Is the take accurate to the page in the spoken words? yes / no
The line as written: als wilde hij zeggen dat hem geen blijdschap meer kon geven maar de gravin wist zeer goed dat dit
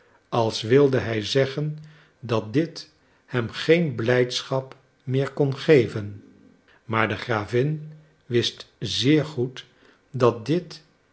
no